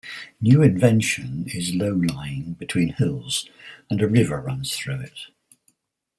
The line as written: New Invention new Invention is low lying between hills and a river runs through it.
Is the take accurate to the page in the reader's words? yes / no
no